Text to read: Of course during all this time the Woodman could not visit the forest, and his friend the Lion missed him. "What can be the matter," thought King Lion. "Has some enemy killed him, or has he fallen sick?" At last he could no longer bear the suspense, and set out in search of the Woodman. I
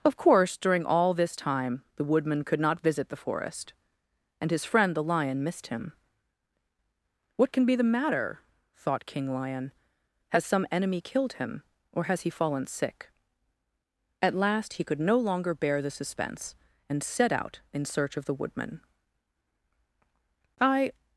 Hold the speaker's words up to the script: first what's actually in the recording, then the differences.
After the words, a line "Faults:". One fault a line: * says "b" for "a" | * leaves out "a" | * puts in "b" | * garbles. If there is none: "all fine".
Of course during all this time the Woodman could not visit the forest, and his friend the Lion missed him. "What can be the matter," thought King Lion. "Has some enemy killed him, or has he fallen sick?" At last he could no longer bear the suspense, and set out in search of the Woodman. I
Faults:
all fine